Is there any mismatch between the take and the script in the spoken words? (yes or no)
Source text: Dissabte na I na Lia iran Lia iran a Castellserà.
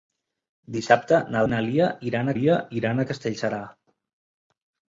no